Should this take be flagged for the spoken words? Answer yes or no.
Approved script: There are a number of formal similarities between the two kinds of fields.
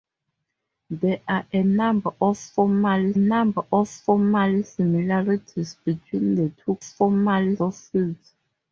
yes